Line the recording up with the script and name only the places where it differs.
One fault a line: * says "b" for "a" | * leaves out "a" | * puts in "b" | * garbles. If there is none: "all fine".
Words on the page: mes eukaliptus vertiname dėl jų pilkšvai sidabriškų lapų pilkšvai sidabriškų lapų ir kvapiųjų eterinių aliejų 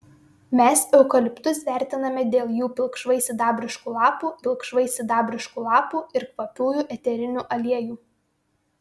all fine